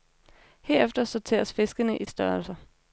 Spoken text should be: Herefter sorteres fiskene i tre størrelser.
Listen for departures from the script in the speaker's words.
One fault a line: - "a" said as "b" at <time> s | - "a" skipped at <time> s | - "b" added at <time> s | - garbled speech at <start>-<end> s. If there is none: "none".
- "tre" skipped at 2.0 s